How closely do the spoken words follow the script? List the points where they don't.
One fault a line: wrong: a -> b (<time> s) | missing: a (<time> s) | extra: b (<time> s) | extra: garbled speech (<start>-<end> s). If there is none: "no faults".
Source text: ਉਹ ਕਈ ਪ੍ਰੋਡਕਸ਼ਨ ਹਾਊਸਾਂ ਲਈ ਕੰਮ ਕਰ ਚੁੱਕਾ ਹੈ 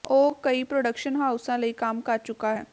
no faults